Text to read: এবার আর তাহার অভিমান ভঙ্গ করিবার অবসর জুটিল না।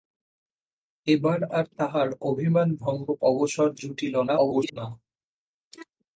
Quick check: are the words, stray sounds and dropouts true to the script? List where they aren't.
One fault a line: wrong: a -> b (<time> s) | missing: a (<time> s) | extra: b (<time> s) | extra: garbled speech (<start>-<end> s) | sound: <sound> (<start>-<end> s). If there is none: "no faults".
missing: করিবার (3.1 s)
extra: garbled speech (4.3-4.8 s)